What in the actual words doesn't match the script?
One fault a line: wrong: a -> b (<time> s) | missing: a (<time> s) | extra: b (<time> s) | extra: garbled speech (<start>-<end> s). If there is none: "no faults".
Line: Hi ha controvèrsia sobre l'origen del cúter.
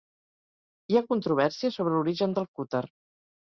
no faults